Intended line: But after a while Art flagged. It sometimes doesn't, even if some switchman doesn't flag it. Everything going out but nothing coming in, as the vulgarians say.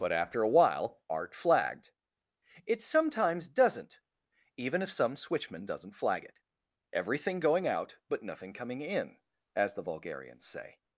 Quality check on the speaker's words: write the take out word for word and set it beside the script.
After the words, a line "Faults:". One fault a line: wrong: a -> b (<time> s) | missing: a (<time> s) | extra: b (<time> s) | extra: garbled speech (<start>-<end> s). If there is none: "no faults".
But after a while Art flagged. It sometimes doesn't, even if some switchman doesn't flag it. Everything going out but nothing coming in, as the vulgarians say.
Faults:
no faults